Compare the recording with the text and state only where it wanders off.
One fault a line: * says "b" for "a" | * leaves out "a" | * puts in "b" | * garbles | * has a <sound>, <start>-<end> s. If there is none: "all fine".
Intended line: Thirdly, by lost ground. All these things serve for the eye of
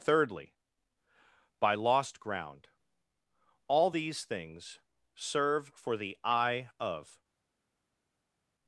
all fine